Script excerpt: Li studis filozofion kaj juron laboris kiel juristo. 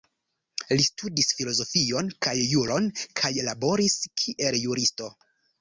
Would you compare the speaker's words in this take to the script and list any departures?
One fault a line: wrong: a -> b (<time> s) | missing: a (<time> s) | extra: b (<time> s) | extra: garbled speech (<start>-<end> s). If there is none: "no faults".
extra: kaj (3.2 s)